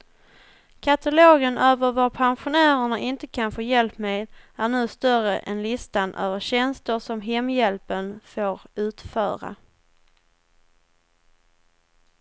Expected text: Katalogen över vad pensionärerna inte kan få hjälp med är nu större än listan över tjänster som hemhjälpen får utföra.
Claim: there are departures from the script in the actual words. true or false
false